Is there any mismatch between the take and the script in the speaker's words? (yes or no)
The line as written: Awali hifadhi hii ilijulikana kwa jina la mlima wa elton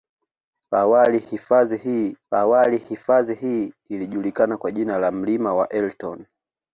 yes